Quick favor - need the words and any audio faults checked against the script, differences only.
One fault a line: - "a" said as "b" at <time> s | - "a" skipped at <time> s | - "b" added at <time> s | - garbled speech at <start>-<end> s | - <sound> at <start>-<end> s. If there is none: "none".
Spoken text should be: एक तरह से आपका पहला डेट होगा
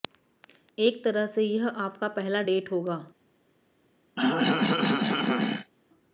- "यह" added at 1.4 s
- throat clearing at 4.2-5.7 s